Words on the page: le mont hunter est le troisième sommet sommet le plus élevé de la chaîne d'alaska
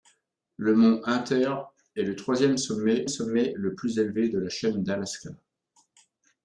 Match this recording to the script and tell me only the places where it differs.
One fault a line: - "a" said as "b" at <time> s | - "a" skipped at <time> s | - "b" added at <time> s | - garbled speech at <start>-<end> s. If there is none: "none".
none